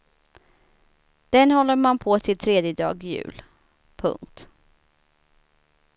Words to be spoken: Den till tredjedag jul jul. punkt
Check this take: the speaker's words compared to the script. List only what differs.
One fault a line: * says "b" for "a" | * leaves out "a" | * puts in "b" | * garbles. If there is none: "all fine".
* puts in "håller man på"
* leaves out "jul"